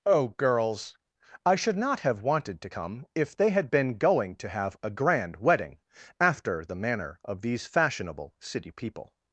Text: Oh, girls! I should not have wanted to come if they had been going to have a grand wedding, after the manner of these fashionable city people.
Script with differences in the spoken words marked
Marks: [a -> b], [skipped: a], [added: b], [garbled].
Oh, girls! I should not have wanted to come if they had been going to have a grand wedding, after the manner of these fashionable city people.